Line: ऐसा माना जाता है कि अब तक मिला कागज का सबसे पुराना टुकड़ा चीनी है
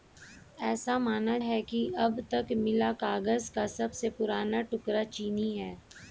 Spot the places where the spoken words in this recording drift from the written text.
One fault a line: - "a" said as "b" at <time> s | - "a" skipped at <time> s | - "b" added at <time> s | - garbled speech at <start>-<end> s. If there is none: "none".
- "जाता" skipped at 1.4 s